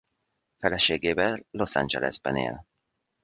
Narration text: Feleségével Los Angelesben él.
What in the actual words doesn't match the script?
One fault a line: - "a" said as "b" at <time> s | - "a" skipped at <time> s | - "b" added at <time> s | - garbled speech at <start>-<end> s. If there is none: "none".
none